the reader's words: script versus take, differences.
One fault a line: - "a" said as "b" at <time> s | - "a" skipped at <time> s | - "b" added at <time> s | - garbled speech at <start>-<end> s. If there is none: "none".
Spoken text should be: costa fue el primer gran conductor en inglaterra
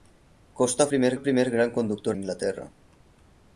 - "fue" said as "primer" at 0.9 s
- "en" skipped at 2.2 s